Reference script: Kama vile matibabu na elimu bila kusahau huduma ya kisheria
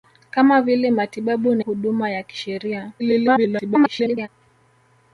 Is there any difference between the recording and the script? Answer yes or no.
yes